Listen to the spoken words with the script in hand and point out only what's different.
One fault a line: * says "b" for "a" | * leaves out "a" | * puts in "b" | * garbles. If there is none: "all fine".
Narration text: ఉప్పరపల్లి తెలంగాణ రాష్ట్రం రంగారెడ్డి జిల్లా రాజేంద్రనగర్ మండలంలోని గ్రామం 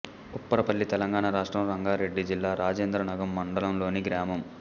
all fine